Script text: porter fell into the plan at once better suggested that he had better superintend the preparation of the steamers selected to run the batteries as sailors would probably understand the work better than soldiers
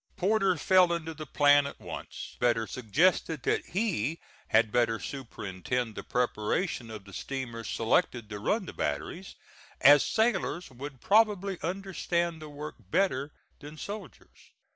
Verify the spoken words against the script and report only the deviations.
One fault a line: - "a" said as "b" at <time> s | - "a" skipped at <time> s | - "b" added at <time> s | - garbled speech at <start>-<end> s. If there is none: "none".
none